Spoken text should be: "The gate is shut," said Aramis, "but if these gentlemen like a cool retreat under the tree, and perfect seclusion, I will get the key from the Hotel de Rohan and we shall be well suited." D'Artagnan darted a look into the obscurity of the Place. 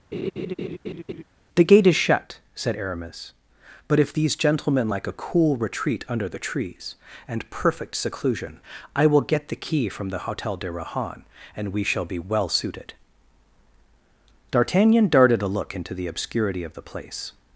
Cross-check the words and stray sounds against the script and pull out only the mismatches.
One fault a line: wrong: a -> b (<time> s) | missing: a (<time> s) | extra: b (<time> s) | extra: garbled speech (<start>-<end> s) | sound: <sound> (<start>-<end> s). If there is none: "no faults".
sound: laugh (0.1-1.2 s)
wrong: tree -> trees (6.4 s)